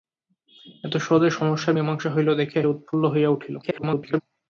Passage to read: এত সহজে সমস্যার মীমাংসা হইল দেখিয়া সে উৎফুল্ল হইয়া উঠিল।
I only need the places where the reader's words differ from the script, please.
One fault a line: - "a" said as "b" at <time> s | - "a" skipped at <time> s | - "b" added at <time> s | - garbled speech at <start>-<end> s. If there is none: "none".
- "সে" skipped at 2.6 s
- garbled speech at 3.6-4.2 s